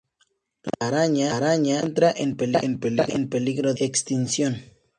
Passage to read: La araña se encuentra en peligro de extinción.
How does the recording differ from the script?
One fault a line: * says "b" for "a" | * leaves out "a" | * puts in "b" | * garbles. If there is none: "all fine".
* puts in "encuentra"
* leaves out "de"